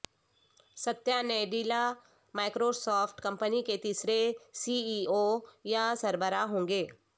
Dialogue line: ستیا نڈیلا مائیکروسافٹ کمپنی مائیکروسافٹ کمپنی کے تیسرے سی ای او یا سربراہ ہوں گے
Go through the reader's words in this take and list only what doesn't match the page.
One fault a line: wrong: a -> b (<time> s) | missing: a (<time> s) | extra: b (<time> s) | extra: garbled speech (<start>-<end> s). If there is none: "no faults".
missing: مائیکروسافٹ کمپنی (3.6 s)